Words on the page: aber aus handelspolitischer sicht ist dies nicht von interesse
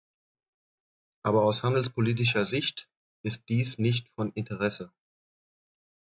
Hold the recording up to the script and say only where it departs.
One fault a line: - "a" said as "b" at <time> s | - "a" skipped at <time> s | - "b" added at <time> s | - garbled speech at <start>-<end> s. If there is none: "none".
none